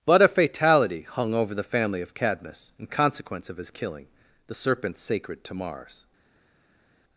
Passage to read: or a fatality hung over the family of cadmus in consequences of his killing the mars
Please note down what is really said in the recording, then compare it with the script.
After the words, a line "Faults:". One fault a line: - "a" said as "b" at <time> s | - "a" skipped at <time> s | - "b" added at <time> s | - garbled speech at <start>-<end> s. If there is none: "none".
but a fatality hung over the family of cadmus in consequence of his killing the serpent sacred to mars
Faults:
- "or" said as "but" at 0.1 s
- "consequences" said as "consequence" at 2.9 s
- "serpent sacred to" added at 4.5 s